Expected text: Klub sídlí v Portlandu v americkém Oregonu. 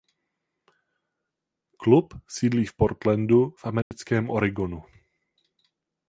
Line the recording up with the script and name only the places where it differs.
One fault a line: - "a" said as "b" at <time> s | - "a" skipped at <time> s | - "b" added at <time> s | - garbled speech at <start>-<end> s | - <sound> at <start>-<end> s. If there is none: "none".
- dropout at 3.8-3.9 s